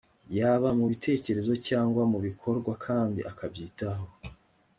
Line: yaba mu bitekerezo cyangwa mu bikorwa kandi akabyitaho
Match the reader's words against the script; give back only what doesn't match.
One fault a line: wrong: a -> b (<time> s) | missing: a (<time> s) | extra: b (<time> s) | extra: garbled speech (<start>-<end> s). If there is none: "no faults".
no faults